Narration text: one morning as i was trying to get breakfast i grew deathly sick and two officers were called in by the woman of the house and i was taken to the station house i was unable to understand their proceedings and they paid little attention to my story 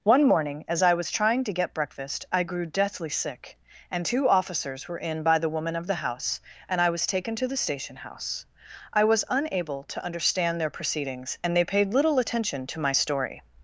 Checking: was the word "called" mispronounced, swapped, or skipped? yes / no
yes